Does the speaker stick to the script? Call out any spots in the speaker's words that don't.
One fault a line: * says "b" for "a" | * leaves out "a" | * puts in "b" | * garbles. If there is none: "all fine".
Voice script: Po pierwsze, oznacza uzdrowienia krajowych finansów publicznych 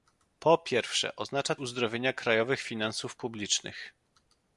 all fine